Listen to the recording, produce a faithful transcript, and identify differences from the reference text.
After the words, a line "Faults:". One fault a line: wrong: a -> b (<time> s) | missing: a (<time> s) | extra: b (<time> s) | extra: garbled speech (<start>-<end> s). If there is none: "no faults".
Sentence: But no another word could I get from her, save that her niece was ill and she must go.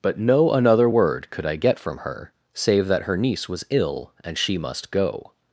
But no another word could I get from her, save that her niece was ill and she must go.
Faults:
no faults